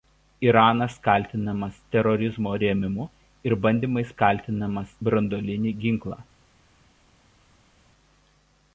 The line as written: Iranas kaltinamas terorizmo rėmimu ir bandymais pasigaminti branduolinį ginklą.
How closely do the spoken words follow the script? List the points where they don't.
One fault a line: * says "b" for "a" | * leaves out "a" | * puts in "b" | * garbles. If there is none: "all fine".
* says "kaltinamas" for "pasigaminti"